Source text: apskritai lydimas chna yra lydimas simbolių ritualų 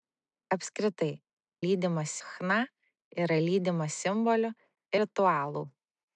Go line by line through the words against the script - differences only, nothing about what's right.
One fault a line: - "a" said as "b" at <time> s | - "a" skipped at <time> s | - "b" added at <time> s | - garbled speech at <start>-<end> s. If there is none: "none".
none